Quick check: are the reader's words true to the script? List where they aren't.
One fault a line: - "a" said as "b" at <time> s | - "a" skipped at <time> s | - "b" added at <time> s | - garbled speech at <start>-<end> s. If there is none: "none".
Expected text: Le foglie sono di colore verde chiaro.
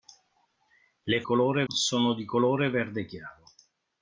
- "foglie" said as "colore" at 1.2 s